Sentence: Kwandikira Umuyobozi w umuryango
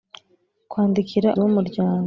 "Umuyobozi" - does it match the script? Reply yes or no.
no